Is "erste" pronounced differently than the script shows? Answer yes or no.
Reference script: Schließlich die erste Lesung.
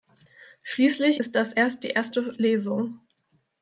no